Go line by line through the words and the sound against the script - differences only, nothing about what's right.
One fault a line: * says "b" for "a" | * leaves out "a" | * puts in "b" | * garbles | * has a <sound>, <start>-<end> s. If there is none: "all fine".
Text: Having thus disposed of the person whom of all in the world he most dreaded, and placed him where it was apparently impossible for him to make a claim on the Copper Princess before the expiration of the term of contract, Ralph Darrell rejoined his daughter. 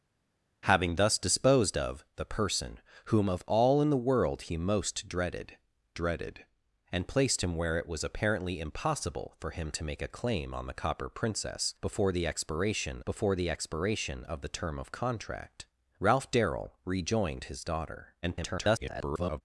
* puts in "dreaded"
* puts in "before the expiration"
* garbles